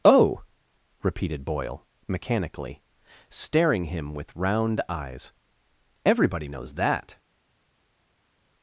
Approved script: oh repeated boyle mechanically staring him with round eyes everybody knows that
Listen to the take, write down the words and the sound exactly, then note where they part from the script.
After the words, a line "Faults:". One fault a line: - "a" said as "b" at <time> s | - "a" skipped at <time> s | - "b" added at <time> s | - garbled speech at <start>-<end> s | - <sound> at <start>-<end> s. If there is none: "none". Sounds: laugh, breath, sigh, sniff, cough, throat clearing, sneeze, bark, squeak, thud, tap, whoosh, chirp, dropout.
oh repeated boyle mechanically staring him with round eyes everybody knows that
Faults:
none